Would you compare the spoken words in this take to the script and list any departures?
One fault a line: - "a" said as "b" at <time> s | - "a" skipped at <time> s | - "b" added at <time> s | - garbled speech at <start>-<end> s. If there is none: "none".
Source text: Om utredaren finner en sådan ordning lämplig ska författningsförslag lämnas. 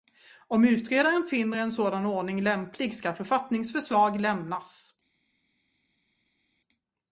none